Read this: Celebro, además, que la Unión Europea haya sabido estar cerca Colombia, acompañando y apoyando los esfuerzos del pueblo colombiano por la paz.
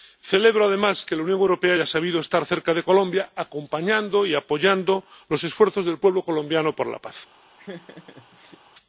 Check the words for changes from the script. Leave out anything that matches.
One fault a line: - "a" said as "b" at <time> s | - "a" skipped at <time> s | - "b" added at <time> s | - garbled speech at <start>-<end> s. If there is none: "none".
- "de" added at 2.7 s